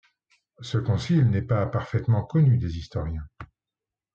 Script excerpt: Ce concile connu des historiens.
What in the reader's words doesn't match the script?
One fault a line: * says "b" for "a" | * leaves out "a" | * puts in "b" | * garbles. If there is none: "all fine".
* puts in "n'est pas parfaitement"